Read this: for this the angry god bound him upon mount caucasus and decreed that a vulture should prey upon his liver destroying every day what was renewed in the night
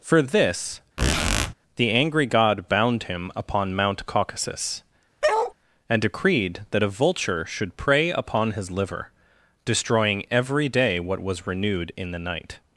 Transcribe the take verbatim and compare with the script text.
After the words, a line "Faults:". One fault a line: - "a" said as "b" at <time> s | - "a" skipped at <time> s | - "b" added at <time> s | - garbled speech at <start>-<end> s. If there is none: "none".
for this the angry god bound him upon mount caucasus and decreed that a vulture should prey upon his liver destroying every day what was renewed in the night
Faults:
none